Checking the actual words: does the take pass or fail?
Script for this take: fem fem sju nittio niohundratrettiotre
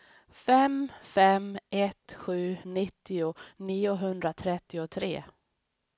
fail